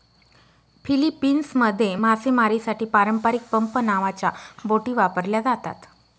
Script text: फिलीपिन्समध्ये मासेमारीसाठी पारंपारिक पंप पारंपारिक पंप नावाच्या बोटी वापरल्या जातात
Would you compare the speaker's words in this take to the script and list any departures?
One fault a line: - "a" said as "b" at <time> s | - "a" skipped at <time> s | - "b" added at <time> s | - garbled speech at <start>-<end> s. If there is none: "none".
- "पारंपारिक पंप" skipped at 3.8 s